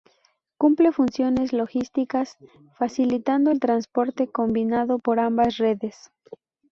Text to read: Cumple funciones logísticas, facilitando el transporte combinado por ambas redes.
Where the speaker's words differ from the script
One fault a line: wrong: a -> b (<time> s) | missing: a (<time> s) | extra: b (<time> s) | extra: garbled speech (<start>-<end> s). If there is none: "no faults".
no faults